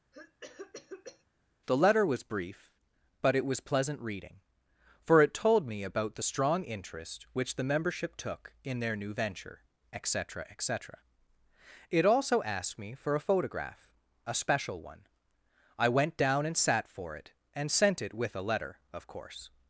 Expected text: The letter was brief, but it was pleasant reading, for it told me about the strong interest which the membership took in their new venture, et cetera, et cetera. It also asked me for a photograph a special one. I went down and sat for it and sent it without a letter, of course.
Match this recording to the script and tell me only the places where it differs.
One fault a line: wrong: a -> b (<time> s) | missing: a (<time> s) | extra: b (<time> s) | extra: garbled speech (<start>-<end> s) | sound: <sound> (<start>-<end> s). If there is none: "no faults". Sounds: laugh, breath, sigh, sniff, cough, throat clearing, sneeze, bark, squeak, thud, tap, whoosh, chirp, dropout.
sound: cough (0.1-1.2 s)
wrong: without -> with (18.1 s)